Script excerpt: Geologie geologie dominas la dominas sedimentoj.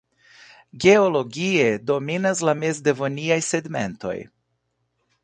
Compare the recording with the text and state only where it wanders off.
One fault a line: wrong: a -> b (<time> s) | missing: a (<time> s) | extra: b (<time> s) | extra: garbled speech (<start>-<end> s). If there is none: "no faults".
missing: geologie (1.7 s)
wrong: dominas -> mezdevoniaj (2.6 s)